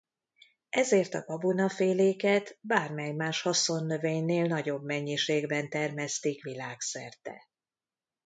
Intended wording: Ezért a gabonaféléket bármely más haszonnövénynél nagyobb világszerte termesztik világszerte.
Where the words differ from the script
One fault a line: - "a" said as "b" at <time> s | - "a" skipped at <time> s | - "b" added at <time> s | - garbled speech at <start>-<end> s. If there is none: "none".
- "világszerte" said as "mennyiségben" at 4.8 s